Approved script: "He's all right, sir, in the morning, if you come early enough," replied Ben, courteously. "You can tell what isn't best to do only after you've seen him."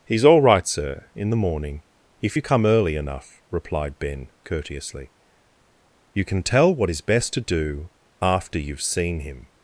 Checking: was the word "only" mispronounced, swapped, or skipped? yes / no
yes